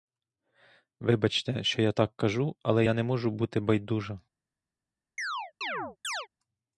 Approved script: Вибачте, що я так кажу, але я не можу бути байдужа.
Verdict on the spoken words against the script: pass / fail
pass